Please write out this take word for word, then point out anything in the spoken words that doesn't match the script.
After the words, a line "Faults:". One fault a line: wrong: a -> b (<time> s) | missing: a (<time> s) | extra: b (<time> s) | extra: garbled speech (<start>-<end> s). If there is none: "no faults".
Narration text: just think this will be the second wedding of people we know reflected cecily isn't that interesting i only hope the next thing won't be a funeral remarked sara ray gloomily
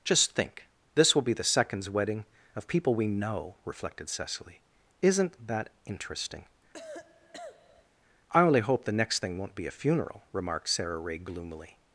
just think this will be the seconds wedding of people we know reflected cecily isn't that interesting i only hope the next thing won't be a funeral remarked sara ray gloomily
Faults:
wrong: second -> seconds (1.4 s)